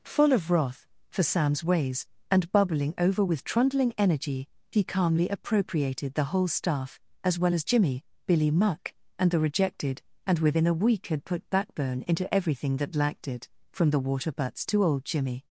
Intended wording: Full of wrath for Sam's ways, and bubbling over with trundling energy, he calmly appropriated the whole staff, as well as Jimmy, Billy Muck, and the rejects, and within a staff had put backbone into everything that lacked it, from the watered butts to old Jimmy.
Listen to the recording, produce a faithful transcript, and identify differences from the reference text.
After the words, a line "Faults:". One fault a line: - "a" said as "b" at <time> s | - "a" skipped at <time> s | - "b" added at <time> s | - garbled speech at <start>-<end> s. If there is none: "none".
Full of wrath for Sam's ways, and bubbling over with trundling energy, he calmly appropriated the whole staff, as well as Jimmy, Billy Muck, and the rejected, and within a week had put backbone into everything that lacked it, from the water butts to old Jimmy.
Faults:
- "rejects" said as "rejected" at 9.4 s
- "staff" said as "week" at 10.7 s
- "watered" said as "water" at 14.0 s